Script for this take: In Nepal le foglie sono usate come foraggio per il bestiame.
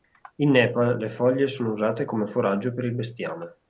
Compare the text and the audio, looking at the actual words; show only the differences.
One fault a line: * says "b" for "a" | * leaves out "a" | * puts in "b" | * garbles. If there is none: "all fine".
all fine